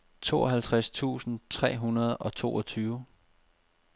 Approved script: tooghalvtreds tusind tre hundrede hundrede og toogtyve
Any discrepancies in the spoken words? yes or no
yes